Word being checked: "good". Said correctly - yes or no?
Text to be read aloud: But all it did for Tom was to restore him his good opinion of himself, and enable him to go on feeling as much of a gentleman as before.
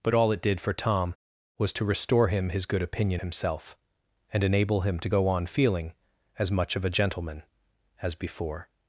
yes